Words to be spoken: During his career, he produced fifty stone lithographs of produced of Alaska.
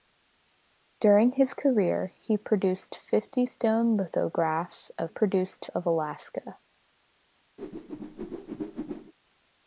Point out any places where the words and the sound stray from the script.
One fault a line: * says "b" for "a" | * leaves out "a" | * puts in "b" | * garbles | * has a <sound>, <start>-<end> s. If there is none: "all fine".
* has a whoosh, 7.6-9.1 s